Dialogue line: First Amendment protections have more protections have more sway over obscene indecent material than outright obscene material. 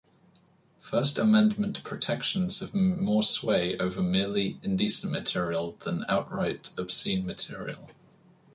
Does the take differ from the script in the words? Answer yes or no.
yes